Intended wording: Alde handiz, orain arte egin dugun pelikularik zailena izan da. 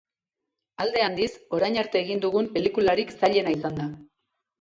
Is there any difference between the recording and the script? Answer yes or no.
no